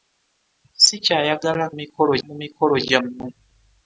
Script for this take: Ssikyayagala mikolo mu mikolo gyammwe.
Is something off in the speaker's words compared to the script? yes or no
no